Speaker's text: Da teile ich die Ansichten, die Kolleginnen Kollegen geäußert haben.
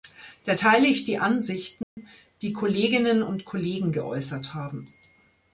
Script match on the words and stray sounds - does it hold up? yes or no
no